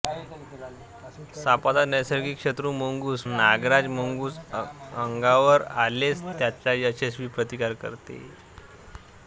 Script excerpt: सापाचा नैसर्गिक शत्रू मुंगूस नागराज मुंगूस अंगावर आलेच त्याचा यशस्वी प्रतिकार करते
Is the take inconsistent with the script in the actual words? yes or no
no